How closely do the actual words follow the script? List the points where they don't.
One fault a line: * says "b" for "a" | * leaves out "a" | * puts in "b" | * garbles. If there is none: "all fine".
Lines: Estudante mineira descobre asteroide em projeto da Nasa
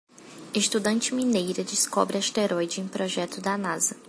all fine